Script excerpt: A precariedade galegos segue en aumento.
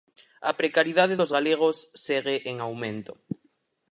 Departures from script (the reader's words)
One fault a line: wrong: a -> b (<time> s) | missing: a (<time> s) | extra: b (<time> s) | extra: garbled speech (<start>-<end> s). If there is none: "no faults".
extra: dos (1.2 s)